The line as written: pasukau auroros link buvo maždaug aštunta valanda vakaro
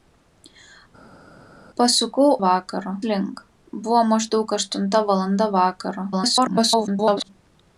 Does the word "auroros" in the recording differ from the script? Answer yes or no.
yes